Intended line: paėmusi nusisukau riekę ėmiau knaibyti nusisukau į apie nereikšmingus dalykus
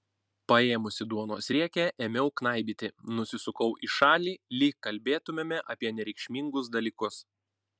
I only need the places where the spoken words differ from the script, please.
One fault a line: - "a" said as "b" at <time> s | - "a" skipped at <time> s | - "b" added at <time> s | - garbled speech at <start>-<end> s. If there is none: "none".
- "nusisukau" said as "duonos" at 1.1 s
- "šalį lyg kalbėtumėme" added at 4.0 s